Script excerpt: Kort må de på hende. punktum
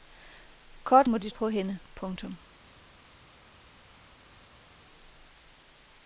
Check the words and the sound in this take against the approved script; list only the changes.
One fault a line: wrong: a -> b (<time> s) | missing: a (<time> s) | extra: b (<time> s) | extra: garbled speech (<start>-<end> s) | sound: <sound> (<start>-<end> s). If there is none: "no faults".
no faults